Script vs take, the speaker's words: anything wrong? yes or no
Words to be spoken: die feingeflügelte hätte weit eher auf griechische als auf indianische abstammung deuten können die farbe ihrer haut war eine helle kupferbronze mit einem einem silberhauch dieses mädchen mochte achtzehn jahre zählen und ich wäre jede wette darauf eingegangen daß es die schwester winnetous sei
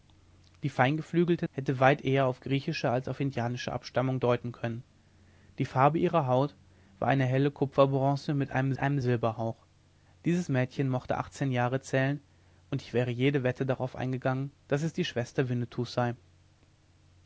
no